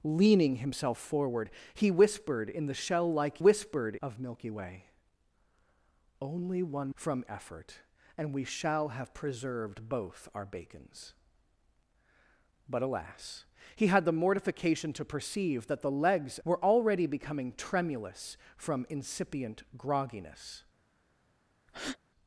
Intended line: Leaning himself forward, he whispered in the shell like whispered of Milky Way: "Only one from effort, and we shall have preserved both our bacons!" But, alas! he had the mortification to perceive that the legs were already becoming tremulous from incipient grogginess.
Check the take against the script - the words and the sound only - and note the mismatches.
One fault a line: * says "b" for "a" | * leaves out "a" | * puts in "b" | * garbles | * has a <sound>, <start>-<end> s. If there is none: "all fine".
* has a breath, 21.7-22.0 s